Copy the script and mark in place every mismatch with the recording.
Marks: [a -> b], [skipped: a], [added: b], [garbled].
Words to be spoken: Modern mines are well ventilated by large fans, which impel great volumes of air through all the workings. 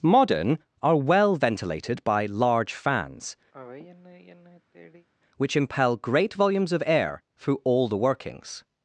Modern [skipped: mines] are well ventilated by large fans, which impel great volumes of air through all the workings.